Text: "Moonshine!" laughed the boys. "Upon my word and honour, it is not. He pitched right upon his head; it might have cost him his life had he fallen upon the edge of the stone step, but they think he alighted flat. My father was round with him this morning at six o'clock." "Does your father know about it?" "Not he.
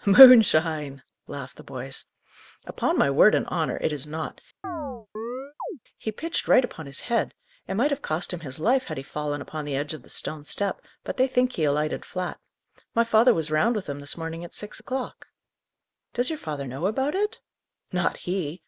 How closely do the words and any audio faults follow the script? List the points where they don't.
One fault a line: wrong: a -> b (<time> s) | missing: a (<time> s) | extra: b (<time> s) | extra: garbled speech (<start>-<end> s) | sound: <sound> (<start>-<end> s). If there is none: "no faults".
sound: chirp (4.6-5.8 s)